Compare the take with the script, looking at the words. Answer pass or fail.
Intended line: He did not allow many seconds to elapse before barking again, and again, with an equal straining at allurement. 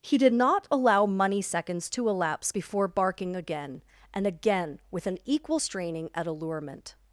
fail